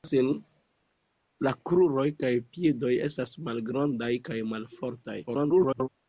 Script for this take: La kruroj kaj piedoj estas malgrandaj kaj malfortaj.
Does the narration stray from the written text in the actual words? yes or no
yes